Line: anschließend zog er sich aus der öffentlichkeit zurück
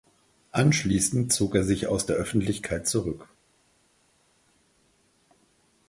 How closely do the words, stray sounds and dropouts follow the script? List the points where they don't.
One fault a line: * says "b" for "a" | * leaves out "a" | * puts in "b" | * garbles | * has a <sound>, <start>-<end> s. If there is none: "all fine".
all fine